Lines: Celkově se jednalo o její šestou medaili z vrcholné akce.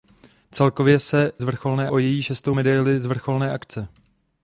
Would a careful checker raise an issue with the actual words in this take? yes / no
yes